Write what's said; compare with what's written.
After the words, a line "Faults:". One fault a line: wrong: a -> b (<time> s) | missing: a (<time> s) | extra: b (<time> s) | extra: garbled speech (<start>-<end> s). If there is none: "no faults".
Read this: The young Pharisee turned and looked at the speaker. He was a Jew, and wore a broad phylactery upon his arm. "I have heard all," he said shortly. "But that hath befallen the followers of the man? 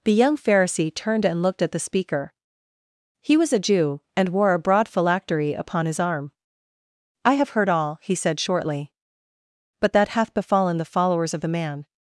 The young Pharisee turned and looked at the speaker. He was a Jew, and wore a broad phylactery upon his arm. "I have heard all," he said shortly. "But that hath befallen the followers of the man?
Faults:
no faults